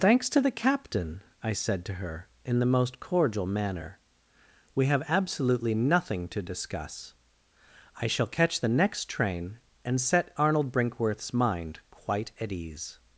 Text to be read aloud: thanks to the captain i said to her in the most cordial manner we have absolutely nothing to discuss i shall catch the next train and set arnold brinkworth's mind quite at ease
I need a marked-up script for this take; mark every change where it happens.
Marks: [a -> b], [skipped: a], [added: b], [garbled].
thanks to the captain i said to her in the most cordial manner we have absolutely nothing to discuss i shall catch the next train and set arnold brinkworth's mind quite at ease